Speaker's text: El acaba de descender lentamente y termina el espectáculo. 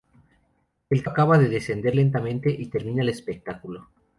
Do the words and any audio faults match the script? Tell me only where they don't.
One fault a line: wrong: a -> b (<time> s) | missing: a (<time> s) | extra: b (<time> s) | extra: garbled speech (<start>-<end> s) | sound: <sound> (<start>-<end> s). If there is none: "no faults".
no faults